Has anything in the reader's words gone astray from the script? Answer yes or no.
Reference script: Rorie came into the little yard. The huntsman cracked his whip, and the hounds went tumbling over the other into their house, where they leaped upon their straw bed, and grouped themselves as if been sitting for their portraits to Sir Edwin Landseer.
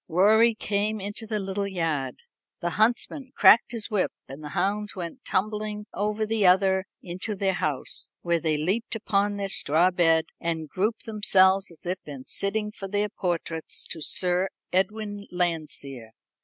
no